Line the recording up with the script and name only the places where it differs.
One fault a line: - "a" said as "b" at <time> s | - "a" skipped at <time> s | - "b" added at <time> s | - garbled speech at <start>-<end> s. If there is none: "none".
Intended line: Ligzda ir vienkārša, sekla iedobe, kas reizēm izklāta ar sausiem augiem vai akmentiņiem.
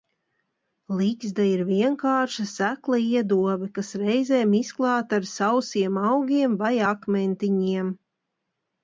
none